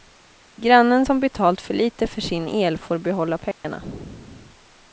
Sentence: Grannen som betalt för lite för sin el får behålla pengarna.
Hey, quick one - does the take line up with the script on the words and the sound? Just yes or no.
no